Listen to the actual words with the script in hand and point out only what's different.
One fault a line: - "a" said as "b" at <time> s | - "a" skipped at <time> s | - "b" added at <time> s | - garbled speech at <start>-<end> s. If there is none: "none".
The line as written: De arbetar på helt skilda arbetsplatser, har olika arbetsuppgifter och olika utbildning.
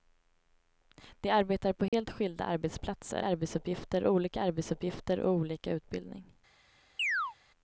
- "har" said as "arbetsuppgifter" at 3.2 s